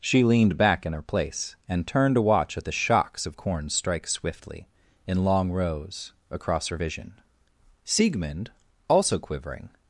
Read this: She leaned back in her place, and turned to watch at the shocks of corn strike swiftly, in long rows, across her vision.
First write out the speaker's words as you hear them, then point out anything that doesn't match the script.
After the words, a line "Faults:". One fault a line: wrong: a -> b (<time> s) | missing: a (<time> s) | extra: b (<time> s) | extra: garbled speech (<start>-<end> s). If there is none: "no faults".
She leaned back in her place, and turned to watch at the shocks of corn strike swiftly, in long rows, across her vision. Siegmund, also quivering
Faults:
extra: Siegmund also quivering (7.9 s)